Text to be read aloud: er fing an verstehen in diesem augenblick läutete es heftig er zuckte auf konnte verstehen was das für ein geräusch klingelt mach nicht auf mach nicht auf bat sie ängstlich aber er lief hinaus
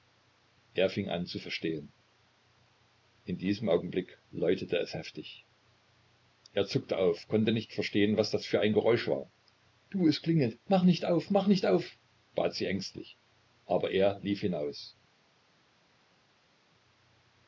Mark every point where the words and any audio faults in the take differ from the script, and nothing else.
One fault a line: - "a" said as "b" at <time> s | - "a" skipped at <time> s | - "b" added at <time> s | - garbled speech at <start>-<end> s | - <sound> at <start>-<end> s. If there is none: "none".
- "zu" added at 1.3 s
- "nicht" added at 7.5 s
- "war du es" added at 9.1 s